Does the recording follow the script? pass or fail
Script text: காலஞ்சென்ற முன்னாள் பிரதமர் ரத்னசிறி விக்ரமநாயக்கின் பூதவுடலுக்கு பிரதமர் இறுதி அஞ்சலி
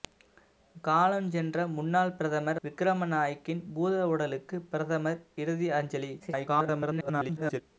fail